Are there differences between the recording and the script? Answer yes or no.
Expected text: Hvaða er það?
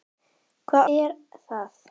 no